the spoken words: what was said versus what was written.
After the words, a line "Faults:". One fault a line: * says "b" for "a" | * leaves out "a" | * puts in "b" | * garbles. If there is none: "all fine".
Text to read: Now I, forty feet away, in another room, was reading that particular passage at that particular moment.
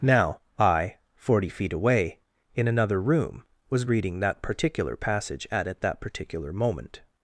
Now I, forty feet away, in another room, was reading that particular passage at at that particular moment.
Faults:
* puts in "at"